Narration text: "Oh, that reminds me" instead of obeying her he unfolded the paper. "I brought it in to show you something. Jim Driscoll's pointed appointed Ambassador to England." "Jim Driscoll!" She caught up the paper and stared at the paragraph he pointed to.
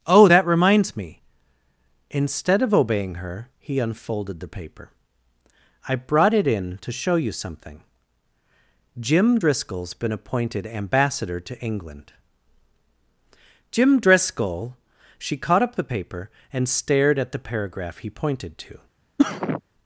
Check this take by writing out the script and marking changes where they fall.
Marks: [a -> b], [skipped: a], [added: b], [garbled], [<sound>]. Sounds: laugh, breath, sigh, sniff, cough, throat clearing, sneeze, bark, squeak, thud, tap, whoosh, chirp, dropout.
"Oh, that reminds me" instead of obeying her he unfolded the paper. "I brought it in to show you something. Jim Driscoll's [pointed -> been] appointed Ambassador to England." "Jim Driscoll!" She caught up the paper and stared at the paragraph he pointed to. [sneeze]